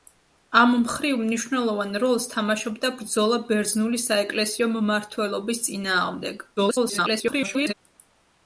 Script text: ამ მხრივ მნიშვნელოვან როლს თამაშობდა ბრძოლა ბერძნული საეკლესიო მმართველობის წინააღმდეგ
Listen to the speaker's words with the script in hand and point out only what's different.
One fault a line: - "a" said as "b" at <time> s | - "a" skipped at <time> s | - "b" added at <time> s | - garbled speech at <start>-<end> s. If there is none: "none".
- garbled speech at 6.6-7.7 s